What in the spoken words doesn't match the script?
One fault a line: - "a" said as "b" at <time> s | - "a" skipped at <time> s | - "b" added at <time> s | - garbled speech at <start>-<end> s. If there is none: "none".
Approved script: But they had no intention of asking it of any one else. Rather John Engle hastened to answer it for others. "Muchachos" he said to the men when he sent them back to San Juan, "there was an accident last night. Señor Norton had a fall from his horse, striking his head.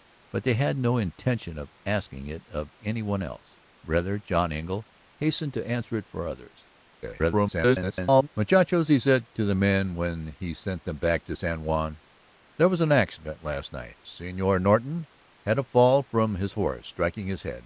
- garbled speech at 7.0-8.3 s